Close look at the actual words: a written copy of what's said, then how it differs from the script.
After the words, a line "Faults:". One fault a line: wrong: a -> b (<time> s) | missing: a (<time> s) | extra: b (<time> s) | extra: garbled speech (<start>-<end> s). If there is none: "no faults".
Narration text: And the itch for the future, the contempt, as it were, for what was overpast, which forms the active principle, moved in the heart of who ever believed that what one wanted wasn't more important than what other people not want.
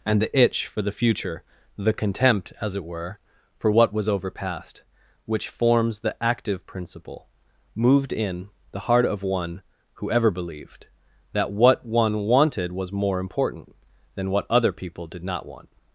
And the itch for the future, the contempt, as it were, for what was overpast, which forms the active principle, moved in the heart of one who ever believed that what one wanted was more important than what other people did not want.
Faults:
extra: one (9.2 s)
wrong: wasn't -> was (12.7 s)
extra: did (15.1 s)